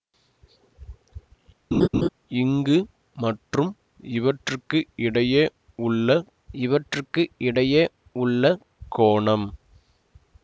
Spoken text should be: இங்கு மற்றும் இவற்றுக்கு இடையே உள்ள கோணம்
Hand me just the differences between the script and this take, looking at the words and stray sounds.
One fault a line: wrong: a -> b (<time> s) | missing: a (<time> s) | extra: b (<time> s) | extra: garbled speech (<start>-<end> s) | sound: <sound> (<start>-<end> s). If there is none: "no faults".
sound: laugh (1.7-2.1 s)
extra: இவற்றுக்கு இடையே உள்ள (6.6 s)